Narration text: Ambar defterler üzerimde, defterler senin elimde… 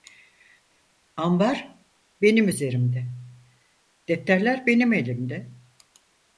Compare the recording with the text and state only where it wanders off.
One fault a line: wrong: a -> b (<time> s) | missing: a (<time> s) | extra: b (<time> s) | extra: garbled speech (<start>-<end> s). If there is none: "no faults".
wrong: defterler -> benim (2.2 s)
wrong: senin -> benim (4.7 s)